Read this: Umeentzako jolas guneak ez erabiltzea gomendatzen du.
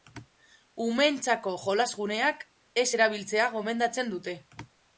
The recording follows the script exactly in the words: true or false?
false